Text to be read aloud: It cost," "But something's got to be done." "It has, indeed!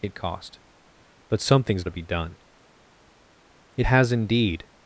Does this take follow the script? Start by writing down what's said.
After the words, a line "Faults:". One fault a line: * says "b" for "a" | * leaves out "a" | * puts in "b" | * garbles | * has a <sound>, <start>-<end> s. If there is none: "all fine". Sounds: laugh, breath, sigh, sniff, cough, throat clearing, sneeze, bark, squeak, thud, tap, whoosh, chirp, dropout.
It cost," "But something's to be done." "It has, indeed!
Faults:
* leaves out "got"